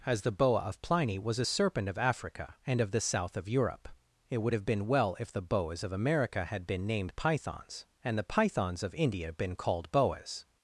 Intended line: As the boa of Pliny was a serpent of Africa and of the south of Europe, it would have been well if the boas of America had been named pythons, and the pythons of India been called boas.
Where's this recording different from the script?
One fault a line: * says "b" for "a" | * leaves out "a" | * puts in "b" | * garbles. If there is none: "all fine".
all fine